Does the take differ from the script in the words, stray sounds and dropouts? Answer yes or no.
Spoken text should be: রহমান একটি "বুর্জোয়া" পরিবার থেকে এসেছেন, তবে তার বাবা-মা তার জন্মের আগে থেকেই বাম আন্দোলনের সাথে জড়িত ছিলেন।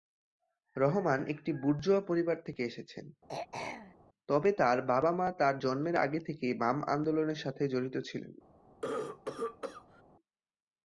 yes